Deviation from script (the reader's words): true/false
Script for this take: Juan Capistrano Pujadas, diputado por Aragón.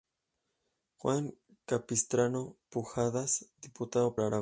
true